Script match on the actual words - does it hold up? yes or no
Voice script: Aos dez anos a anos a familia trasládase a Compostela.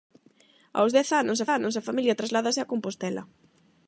yes